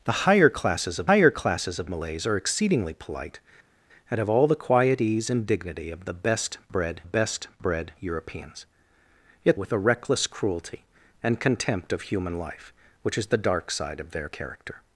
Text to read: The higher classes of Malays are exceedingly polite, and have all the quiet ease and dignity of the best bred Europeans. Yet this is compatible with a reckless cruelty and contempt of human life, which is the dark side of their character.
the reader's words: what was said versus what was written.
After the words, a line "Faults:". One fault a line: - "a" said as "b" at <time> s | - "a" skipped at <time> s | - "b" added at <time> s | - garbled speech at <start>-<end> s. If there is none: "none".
The higher classes of higher classes of Malays are exceedingly polite, and have all the quiet ease and dignity of the best bred best bred Europeans. Yet with a reckless cruelty and contempt of human life, which is the dark side of their character.
Faults:
- "higher classes of" added at 1.0 s
- "best bred" added at 7.0 s
- "this is compatible" skipped at 9.6 s